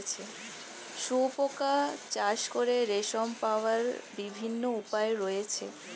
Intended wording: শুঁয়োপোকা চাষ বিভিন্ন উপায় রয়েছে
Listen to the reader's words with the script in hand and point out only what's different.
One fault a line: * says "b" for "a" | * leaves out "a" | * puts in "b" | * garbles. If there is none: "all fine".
* puts in "করে রেশম পাওয়ার"